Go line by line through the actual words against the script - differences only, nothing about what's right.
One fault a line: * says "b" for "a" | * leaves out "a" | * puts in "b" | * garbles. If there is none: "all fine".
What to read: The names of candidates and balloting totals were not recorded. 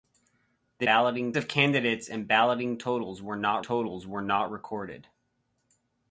* says "balloting" for "names"
* puts in "totals were not"